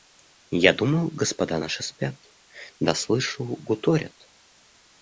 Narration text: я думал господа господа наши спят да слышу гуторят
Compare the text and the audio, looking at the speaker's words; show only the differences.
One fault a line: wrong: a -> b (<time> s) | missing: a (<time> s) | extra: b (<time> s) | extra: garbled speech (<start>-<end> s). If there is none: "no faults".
missing: господа (1.6 s)